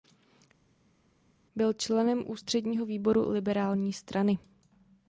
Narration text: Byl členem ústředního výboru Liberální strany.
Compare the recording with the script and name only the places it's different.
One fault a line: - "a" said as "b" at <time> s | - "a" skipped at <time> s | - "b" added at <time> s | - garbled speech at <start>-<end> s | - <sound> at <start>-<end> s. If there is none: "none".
none